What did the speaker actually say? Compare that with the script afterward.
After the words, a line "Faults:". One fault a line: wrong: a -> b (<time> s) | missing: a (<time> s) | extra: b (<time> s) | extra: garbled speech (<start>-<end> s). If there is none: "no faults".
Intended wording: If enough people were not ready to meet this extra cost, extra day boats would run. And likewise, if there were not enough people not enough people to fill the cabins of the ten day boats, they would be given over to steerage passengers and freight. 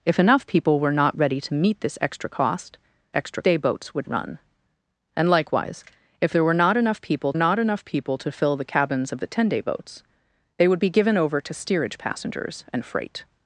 If enough people were not ready to meet this extra cost, extra day boats would run. And likewise, if there were not enough people not enough people to fill the cabins of the ten day boats, they would be given over to steerage passengers and freight.
Faults:
no faults